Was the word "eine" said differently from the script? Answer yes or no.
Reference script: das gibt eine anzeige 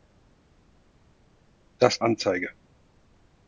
yes